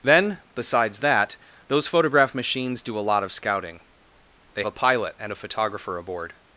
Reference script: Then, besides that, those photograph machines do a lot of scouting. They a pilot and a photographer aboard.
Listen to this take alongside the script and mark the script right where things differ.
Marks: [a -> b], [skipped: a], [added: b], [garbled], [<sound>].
Then, besides that, those photograph machines do a lot of scouting. They a pilot and a photographer aboard.